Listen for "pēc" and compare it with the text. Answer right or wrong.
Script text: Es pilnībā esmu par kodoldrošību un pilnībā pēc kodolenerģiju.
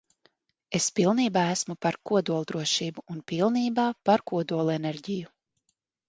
wrong